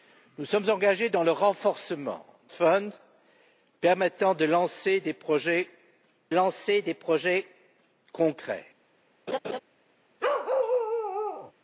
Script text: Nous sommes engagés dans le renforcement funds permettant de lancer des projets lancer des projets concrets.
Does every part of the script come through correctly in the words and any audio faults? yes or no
no